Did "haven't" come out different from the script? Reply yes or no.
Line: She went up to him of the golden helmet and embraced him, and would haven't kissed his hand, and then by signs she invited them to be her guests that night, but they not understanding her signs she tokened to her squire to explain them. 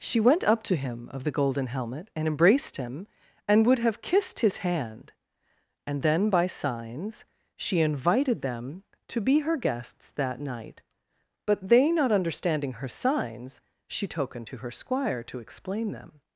yes